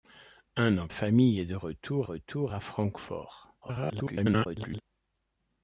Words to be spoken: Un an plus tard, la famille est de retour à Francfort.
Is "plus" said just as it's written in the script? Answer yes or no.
no